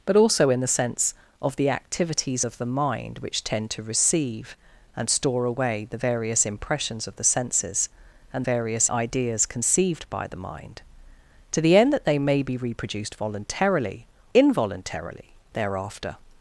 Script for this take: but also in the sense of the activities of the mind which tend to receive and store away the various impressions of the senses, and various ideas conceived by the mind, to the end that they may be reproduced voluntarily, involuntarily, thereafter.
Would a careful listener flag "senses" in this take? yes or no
no